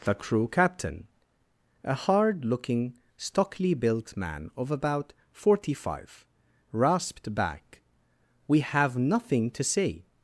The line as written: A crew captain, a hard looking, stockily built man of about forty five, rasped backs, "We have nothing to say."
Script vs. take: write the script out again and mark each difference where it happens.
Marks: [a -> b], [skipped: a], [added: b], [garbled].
[A -> The] crew captain, a hard looking, stockily built man of about forty five, rasped [backs, -> back] "We have nothing to say."